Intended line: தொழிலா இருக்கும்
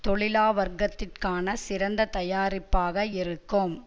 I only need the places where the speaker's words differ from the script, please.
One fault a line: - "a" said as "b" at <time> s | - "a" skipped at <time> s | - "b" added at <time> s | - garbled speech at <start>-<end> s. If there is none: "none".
- "வர்க்கத்திற்கான சிறந்த தயாரிப்பாக" added at 0.5 s